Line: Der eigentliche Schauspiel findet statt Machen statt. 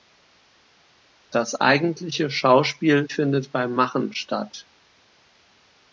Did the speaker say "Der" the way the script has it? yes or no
no